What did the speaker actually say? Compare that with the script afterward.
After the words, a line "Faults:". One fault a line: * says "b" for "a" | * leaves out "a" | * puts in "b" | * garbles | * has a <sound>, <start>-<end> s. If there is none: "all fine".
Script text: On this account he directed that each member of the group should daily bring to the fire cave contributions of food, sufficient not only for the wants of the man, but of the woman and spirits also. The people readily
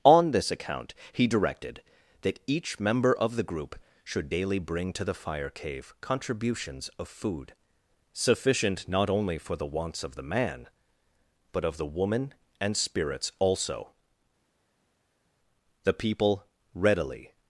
On this account he directed that each member of the group should daily bring to the fire cave contributions of food, sufficient not only for the wants of the man, but of the woman and spirits also. The people readily
Faults:
all fine